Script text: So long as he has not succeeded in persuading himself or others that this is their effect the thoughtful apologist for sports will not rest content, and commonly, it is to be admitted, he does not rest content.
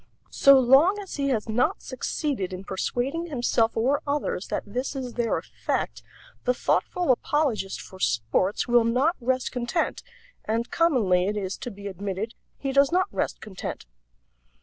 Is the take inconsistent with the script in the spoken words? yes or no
no